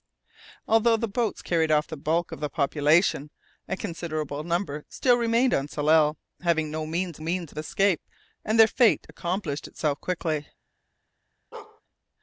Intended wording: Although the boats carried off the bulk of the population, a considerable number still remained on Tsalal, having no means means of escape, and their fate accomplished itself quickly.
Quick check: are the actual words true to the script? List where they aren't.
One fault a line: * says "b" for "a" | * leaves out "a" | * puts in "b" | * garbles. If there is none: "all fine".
all fine